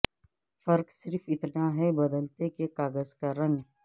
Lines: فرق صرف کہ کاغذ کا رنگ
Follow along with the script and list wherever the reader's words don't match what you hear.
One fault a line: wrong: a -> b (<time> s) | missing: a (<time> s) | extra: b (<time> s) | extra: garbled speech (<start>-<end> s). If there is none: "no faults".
extra: اتنا ہے بدلتے (1.3 s)